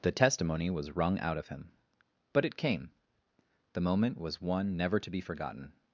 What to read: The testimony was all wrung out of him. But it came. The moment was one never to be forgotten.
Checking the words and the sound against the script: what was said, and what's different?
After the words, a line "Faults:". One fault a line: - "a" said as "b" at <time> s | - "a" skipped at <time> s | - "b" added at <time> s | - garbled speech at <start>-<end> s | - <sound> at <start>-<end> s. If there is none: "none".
The testimony was wrung out of him. But it came. The moment was one never to be forgotten.
Faults:
- "all" skipped at 1.0 s